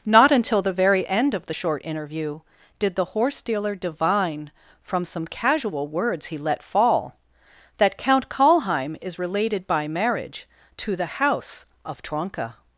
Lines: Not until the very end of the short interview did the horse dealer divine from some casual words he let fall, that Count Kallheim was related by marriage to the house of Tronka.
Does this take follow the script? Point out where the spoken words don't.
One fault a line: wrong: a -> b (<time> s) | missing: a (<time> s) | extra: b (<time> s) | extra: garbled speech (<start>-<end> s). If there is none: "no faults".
wrong: was -> is (9.0 s)